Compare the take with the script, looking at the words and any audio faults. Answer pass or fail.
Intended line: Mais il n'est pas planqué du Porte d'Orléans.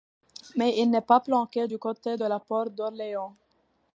fail